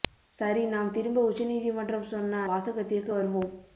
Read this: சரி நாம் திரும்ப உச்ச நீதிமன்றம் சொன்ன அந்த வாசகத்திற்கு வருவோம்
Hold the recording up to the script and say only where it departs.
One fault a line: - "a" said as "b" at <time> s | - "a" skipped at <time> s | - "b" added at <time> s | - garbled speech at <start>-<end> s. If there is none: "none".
- "அந்த" skipped at 2.4 s